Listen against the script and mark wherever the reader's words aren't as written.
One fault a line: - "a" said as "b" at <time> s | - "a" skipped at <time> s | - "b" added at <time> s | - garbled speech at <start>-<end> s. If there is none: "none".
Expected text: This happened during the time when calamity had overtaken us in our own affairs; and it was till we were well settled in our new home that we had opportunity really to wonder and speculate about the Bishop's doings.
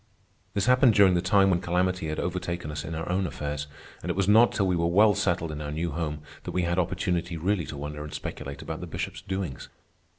- "not" added at 4.3 s